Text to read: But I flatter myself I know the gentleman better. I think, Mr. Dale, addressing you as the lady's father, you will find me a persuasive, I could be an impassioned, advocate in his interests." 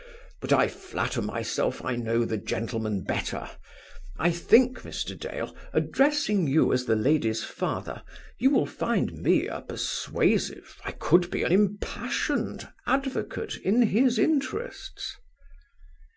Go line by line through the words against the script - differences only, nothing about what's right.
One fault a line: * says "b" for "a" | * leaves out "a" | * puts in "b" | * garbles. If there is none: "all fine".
all fine